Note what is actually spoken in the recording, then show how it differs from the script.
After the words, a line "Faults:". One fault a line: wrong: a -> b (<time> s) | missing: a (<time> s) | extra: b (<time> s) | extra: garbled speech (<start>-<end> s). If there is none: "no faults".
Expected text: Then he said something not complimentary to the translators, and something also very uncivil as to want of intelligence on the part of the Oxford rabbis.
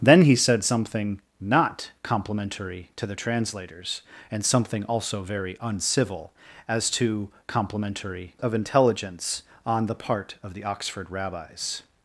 Then he said something not complimentary to the translators, and something also very uncivil as to complimentary of intelligence on the part of the Oxford rabbis.
Faults:
wrong: want -> complimentary (7.5 s)